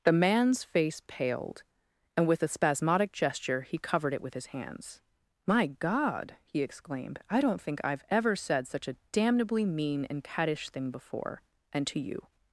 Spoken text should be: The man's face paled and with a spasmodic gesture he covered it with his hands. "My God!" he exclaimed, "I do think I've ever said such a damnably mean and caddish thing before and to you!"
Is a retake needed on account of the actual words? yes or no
yes